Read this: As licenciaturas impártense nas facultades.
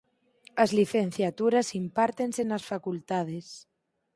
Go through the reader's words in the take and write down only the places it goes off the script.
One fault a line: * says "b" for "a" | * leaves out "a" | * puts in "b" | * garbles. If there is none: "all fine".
all fine